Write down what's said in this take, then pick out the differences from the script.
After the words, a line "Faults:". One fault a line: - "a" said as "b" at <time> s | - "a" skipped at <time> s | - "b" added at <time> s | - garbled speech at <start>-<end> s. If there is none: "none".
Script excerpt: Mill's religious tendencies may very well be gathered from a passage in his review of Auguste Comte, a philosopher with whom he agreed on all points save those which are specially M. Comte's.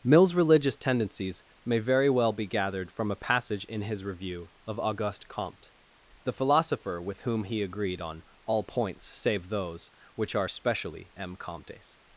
Mill's religious tendencies may very well be gathered from a passage in his review of Auguste Comte, the philosopher with whom he agreed on all points save those which are specially M. Comte's.
Faults:
- "a" said as "the" at 6.2 s